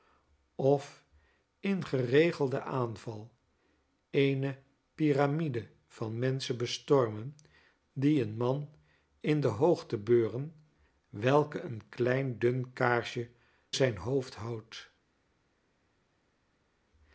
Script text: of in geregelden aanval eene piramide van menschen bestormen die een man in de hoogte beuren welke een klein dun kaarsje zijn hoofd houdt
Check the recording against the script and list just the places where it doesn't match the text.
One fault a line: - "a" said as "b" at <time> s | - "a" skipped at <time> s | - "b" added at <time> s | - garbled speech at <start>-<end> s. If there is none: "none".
none